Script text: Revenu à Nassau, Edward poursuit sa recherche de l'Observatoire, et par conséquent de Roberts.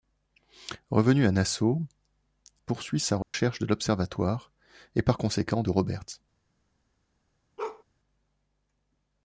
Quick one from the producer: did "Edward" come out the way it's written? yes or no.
no